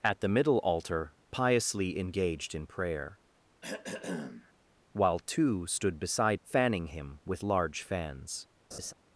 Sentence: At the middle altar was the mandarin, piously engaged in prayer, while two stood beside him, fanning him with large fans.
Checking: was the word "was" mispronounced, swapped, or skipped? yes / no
yes